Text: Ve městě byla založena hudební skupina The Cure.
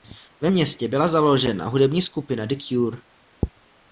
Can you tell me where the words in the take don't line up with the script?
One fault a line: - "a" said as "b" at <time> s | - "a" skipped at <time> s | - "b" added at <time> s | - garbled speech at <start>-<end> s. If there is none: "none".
none